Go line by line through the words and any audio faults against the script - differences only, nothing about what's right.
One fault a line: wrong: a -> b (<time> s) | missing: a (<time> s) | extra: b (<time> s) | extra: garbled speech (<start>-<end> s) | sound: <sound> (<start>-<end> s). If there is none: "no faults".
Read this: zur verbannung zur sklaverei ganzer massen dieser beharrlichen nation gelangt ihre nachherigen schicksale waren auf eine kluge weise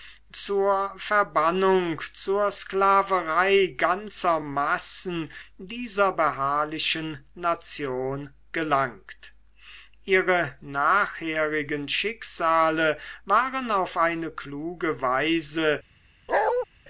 sound: bark (16.3-16.7 s)